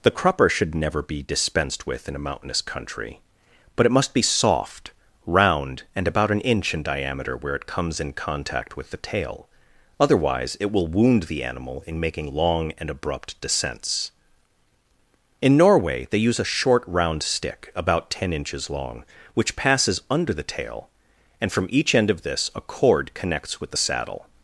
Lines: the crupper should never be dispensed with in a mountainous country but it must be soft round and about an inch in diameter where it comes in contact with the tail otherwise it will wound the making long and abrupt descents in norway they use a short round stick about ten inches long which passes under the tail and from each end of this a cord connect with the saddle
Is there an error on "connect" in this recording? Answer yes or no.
yes